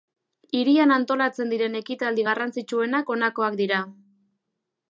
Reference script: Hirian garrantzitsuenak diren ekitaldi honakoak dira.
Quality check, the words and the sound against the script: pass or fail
fail